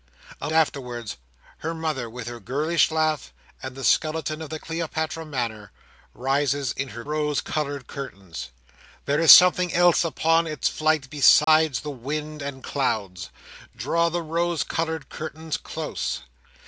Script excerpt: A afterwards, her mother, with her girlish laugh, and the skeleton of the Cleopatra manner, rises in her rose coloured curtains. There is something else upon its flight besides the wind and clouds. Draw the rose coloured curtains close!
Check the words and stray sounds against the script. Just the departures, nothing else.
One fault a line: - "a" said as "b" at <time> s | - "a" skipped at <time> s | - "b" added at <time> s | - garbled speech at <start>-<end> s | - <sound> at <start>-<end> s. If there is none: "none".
- dropout at 11.4-11.5 s